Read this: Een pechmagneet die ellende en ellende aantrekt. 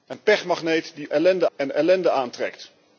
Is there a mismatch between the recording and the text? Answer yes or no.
no